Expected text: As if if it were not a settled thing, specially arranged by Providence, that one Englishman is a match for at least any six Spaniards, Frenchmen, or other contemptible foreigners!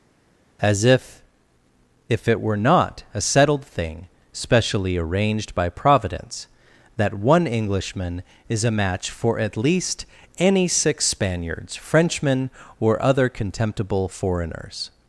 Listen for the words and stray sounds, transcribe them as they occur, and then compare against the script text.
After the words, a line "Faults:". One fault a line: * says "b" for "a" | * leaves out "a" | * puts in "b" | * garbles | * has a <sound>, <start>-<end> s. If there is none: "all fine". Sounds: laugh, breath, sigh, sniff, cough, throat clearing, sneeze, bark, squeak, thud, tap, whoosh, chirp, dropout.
As if if it were not a settled thing, specially arranged by Providence, that one Englishman is a match for at least any six Spaniards, Frenchmen, or other contemptible foreigners!
Faults:
all fine